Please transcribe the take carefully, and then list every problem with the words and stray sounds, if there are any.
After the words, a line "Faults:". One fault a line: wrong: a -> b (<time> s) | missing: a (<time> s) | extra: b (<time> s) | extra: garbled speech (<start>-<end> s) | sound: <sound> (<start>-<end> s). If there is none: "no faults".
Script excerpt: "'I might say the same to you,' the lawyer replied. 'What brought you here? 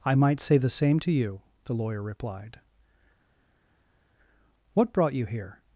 "'I might say the same to you,' the lawyer replied. 'What brought you here?
Faults:
no faults